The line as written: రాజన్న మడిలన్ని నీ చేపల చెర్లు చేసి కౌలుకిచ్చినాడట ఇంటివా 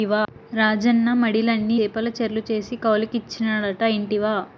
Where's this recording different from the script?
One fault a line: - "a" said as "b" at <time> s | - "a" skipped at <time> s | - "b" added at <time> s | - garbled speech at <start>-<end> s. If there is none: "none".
- "నీ" skipped at 1.8 s